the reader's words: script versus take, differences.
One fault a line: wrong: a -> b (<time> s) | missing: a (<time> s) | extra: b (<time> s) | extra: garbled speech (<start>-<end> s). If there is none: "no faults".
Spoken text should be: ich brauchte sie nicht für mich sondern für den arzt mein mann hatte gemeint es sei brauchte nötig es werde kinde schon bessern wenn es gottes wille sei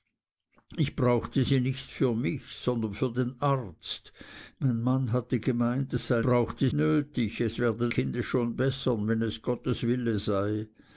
no faults